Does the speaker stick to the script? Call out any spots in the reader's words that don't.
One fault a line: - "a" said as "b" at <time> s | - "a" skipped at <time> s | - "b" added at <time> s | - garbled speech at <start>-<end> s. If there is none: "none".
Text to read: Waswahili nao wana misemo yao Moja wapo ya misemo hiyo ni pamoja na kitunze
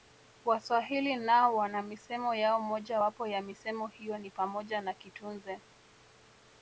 none